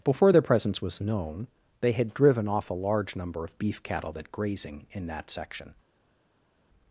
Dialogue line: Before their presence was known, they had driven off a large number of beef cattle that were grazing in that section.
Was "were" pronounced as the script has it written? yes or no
no